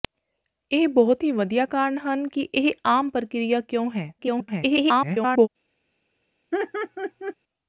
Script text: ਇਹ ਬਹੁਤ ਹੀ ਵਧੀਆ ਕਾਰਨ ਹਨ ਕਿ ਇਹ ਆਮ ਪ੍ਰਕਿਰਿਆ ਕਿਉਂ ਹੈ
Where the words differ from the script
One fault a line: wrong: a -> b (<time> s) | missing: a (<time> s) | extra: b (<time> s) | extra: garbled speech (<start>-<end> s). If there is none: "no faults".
extra: garbled speech (4.2-5.5 s)